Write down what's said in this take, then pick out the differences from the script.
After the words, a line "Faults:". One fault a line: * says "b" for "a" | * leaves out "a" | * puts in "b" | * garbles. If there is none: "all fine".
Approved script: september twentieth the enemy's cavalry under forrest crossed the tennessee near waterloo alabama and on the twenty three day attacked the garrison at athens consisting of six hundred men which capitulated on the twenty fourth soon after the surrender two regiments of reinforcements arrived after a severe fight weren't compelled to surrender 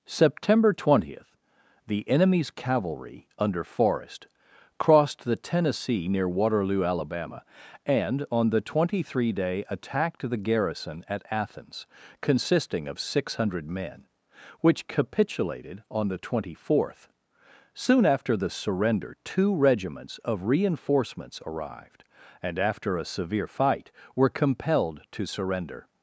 september twentieth the enemy's cavalry under forrest crossed the tennessee near waterloo alabama and on the twenty three day attacked the garrison at athens consisting of six hundred men which capitulated on the twenty fourth soon after the surrender two regiments of reinforcements arrived and after a severe fight were compelled to surrender
Faults:
* puts in "and"
* says "were" for "weren't"